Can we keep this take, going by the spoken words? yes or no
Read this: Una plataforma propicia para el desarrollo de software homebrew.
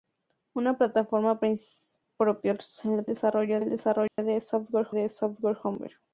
no